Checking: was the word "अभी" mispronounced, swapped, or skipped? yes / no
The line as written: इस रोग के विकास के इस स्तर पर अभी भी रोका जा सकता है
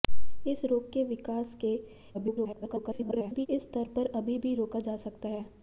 no